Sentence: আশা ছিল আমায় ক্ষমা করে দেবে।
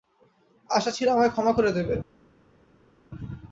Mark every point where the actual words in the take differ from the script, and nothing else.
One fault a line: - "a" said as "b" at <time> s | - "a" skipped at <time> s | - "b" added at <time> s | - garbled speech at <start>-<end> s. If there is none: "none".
none